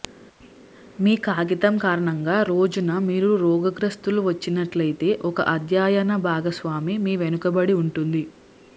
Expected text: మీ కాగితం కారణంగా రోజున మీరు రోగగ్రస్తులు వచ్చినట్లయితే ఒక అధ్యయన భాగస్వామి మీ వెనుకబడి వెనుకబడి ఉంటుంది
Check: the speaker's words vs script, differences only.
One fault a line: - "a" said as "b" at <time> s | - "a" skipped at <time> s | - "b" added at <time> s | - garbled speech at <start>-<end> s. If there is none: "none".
- "వెనుకబడి" skipped at 7.7 s